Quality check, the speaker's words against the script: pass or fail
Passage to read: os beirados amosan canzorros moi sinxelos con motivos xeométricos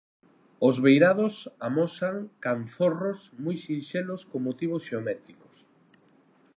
pass